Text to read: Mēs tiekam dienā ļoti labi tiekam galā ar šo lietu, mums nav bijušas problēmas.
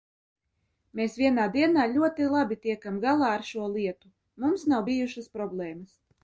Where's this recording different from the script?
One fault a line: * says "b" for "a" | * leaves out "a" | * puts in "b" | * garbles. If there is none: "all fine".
* says "vienā" for "tiekam"